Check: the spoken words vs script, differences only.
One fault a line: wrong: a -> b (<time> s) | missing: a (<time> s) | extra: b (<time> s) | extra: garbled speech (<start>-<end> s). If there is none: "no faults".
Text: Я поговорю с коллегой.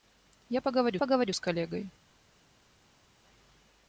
extra: поговорю (1.0 s)